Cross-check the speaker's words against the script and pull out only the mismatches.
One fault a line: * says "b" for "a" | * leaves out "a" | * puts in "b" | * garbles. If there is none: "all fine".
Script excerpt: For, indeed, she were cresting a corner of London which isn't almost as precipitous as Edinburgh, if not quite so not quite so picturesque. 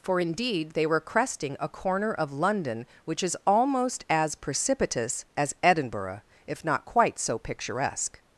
* says "they" for "she"
* says "is" for "isn't"
* leaves out "not quite so"